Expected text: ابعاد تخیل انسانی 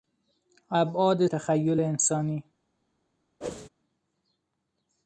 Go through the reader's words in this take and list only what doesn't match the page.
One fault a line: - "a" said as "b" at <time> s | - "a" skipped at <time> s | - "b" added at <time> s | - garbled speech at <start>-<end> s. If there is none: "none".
none